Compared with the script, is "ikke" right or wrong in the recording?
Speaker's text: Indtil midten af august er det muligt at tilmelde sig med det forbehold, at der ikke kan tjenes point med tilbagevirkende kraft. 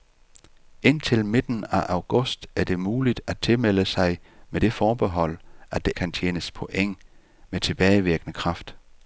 wrong